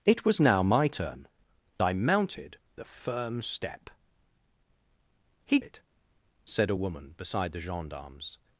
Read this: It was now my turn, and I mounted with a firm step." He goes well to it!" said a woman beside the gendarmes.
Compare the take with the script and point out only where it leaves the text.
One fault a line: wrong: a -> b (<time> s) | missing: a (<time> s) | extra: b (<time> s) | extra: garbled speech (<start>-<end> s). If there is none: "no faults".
missing: and (1.3 s)
missing: with (2.6 s)
missing: goes well to (5.6 s)